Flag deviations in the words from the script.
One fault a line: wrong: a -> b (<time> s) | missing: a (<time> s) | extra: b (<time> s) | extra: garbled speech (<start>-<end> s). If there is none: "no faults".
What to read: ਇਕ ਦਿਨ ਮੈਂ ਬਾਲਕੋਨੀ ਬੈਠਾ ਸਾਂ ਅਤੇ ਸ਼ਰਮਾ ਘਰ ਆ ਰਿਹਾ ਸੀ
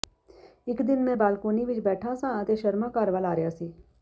extra: ਵਿਚ (1.6 s)
extra: ਵੱਲ (3.1 s)